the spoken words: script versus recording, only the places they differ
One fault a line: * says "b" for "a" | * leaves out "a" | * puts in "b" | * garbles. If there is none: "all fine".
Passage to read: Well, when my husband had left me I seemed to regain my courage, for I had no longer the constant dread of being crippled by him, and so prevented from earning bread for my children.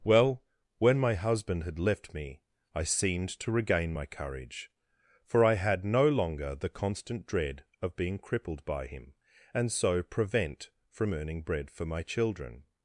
* says "prevent" for "prevented"